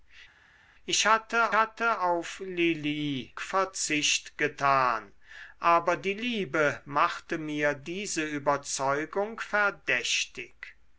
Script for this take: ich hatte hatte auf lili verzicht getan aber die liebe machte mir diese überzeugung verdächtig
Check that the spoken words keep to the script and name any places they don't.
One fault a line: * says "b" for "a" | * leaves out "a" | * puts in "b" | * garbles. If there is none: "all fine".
all fine